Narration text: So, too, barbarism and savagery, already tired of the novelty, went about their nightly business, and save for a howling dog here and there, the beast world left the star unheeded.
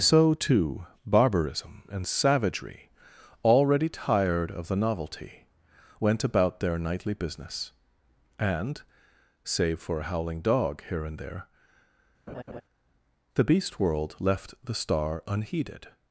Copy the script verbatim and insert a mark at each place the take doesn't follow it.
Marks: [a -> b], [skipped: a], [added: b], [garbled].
So, too, barbarism and savagery, already tired of the novelty, went about their nightly business, and save for a howling dog here and there, the beast world left the star unheeded.